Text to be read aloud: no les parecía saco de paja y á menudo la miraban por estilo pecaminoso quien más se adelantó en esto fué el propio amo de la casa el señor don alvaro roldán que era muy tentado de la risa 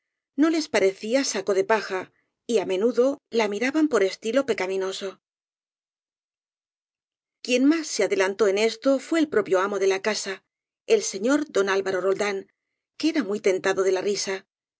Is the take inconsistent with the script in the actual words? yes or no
no